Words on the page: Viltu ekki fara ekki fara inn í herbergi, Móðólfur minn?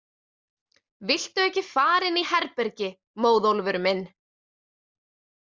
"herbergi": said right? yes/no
yes